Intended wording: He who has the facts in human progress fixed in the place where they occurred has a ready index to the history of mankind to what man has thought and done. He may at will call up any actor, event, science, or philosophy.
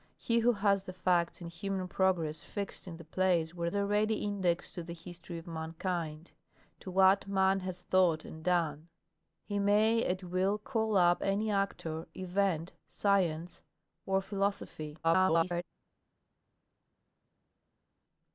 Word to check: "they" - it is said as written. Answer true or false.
false